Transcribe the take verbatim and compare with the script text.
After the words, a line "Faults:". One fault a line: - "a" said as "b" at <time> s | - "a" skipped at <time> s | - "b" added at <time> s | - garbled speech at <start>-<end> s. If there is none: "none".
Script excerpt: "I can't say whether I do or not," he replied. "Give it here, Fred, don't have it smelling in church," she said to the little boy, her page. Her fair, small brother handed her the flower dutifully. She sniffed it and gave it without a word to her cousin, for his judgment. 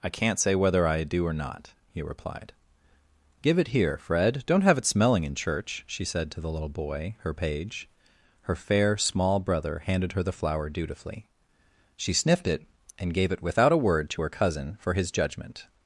"I can't say whether I do or not," he replied. "Give it here, Fred, don't have it smelling in church," she said to the little boy, her page. Her fair, small brother handed her the flower dutifully. She sniffed it and gave it without a word to her cousin, for his judgment.
Faults:
none